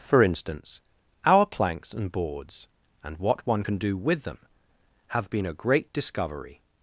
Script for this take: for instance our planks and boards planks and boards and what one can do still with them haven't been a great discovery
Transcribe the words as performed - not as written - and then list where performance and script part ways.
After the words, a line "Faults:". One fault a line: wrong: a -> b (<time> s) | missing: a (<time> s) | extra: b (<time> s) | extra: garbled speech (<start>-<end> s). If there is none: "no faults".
for instance our planks and boards and what one can do with them have been a great discovery
Faults:
missing: planks (2.7 s)
missing: boards and (3.2 s)
missing: still (4.0 s)
wrong: haven't -> have (5.1 s)